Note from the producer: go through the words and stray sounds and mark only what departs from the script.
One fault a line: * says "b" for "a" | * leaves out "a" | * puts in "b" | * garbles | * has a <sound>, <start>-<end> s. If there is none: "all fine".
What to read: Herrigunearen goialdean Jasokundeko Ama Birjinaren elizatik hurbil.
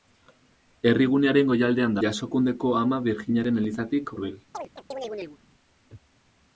* has a chirp, 4.5-5.4 s